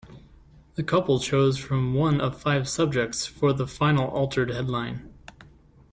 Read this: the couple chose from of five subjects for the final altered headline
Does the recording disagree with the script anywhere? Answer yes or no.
yes